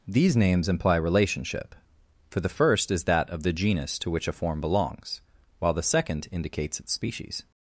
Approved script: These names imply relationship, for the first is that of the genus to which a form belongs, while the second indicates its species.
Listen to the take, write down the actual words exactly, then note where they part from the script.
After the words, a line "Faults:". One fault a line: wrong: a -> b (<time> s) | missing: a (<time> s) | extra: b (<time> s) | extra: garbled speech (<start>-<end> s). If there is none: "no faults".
These names imply relationship, for the first is that of the genus to which a form belongs, while the second indicates its species.
Faults:
no faults